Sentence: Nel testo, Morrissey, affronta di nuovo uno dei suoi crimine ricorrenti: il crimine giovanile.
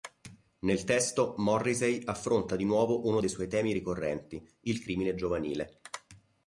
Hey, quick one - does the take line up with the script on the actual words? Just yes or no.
no